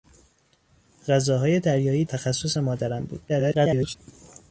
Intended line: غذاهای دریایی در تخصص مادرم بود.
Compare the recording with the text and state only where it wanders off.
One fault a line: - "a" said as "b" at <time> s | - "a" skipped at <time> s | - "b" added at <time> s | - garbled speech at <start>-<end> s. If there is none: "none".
- "در" skipped at 2.0 s
- garbled speech at 3.3-4.0 s